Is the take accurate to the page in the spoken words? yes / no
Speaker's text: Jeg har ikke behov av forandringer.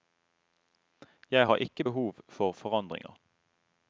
no